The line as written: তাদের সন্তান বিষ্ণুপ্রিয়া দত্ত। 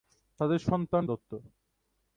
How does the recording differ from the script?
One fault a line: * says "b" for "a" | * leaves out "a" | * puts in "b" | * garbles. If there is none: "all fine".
* leaves out "বিষ্ণুপ্রিয়া"